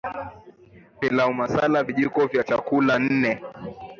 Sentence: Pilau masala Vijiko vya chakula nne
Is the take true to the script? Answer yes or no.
yes